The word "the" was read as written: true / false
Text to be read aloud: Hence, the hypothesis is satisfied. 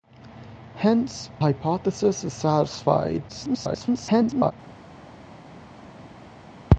false